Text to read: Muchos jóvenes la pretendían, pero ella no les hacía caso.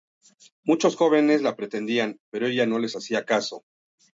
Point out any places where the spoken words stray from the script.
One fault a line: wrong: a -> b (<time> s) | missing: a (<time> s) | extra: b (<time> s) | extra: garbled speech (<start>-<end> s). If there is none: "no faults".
no faults